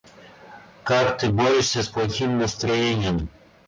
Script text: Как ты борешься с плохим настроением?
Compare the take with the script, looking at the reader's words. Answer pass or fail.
pass